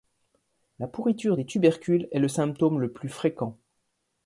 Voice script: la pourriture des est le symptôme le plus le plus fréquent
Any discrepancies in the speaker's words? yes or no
yes